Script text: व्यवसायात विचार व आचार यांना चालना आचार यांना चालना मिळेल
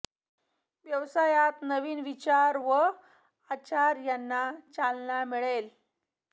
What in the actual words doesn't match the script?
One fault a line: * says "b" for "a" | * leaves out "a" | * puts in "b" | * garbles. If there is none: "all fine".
* puts in "नवीन"
* leaves out "आचार यांना चालना"